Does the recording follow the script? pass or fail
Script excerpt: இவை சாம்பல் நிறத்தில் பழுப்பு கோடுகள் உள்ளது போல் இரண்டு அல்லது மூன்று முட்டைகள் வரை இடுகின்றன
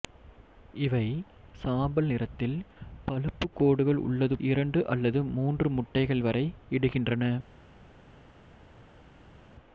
fail